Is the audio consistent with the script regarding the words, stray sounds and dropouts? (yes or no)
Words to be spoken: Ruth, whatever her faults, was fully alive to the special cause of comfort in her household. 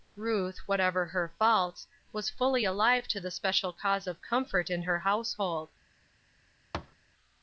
no